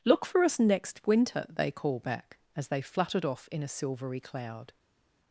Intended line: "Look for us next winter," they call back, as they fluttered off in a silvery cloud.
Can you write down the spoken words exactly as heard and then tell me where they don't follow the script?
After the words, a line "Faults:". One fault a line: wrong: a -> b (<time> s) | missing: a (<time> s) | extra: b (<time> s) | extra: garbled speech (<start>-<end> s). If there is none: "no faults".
"Look for us next winter," they call back, as they fluttered off in a silvery cloud.
Faults:
no faults